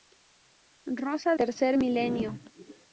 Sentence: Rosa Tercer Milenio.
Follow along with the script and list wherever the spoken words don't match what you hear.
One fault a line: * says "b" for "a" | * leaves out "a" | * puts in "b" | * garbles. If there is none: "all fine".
all fine